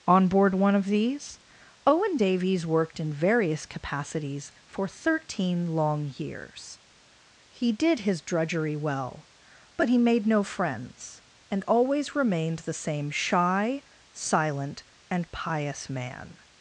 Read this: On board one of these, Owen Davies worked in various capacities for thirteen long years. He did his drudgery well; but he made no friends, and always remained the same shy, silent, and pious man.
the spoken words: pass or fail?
pass